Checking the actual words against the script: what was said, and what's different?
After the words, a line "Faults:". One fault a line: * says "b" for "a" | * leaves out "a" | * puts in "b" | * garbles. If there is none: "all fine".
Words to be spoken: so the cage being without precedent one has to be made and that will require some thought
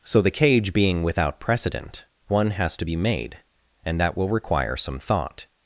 so the cage being without precedent one has to be made and that will require some thought
Faults:
all fine